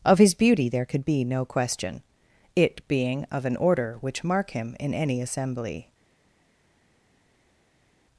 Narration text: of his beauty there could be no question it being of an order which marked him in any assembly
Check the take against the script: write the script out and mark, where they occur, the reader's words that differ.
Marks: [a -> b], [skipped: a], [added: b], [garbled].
of his beauty there could be no question it being of an order which [marked -> mark] him in any assembly